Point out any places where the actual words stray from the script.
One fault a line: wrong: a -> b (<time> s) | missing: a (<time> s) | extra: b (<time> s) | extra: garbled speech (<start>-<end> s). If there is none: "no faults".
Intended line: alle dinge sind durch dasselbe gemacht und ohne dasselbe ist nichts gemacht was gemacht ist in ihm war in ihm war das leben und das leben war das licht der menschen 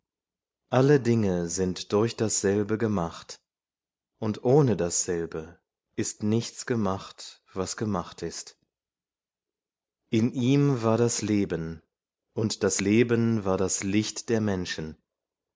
missing: in ihm war (11.0 s)